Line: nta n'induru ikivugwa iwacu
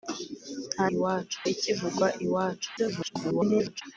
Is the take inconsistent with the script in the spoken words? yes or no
yes